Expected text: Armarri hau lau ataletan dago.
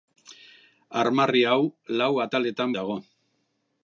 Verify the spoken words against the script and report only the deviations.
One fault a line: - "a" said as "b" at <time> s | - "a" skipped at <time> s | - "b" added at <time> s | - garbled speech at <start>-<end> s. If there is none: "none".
none